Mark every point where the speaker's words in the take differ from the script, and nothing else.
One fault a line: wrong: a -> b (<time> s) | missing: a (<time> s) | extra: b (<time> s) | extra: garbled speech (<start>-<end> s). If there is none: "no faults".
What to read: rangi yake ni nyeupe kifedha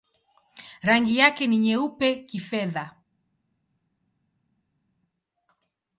no faults